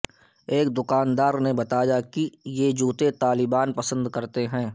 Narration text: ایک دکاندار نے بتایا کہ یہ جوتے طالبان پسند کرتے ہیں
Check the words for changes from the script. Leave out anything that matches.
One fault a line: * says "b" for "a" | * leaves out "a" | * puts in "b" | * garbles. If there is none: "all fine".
all fine